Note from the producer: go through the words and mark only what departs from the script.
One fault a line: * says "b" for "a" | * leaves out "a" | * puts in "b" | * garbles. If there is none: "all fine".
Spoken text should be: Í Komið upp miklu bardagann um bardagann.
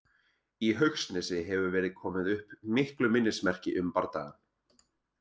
* puts in "Haugsnesi hefur verið"
* says "minnismerki" for "bardagann"